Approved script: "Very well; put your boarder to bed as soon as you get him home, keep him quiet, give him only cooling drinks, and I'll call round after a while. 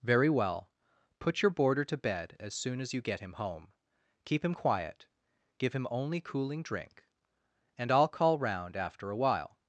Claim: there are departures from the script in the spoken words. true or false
true